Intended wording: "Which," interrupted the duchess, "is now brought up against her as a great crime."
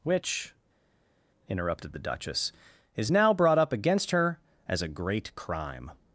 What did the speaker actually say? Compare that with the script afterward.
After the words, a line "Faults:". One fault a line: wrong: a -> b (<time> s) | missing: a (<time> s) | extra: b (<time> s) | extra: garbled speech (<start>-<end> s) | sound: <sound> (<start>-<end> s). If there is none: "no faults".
"Which," interrupted the duchess, "is now brought up against her as a great crime."
Faults:
no faults